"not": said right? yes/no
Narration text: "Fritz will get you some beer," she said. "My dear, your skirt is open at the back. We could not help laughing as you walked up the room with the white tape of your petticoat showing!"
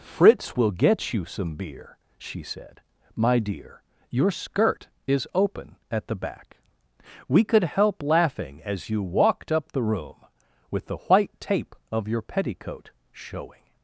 no